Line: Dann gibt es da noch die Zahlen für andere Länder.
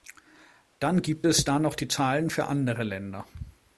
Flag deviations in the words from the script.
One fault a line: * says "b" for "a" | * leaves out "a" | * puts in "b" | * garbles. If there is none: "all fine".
all fine